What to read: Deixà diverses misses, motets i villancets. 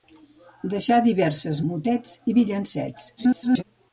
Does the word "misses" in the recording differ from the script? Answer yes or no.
yes